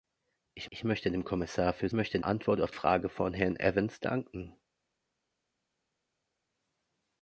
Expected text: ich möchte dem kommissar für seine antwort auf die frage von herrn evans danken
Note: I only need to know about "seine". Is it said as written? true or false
false